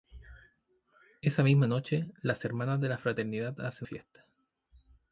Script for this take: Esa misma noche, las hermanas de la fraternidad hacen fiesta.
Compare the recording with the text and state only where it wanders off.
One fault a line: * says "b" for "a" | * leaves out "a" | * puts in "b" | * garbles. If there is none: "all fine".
all fine